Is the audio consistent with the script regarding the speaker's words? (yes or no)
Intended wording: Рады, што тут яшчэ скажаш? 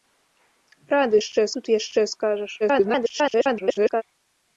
no